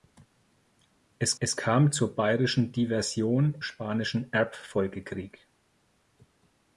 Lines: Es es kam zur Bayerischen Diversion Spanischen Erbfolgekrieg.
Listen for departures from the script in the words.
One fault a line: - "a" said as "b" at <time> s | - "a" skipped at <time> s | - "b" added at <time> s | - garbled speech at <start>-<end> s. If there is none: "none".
none